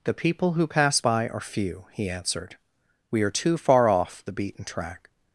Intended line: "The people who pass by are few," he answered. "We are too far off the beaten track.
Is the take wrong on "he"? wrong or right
right